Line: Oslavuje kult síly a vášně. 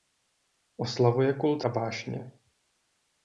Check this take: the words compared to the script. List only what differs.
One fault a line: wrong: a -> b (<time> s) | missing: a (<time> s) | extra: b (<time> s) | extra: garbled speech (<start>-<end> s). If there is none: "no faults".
missing: síly (1.6 s)